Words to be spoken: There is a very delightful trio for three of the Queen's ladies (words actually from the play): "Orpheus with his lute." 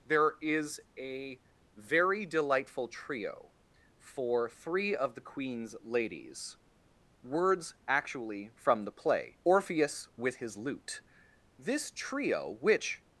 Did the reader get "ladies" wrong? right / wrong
right